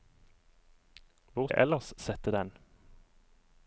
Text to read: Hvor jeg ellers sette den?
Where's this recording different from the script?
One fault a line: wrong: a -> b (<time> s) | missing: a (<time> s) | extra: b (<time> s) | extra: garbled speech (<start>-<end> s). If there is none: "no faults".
no faults